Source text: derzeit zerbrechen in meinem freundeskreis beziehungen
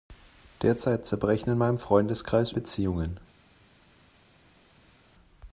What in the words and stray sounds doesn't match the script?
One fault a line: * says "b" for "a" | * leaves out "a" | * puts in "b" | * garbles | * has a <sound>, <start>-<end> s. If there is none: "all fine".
all fine